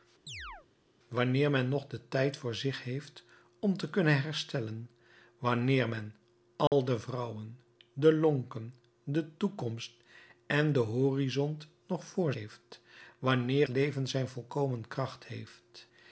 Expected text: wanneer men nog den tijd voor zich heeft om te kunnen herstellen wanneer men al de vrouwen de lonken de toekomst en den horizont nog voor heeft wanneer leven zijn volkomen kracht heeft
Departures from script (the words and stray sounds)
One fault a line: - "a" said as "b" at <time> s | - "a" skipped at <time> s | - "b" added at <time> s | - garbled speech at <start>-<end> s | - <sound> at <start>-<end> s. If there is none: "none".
- chirp at 0.3-0.7 s
- dropout at 6.7-6.7 s